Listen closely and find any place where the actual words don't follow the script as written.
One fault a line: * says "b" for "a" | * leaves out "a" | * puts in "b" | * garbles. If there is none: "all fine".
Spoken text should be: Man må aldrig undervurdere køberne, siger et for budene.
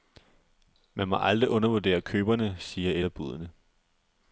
* says "af" for "for"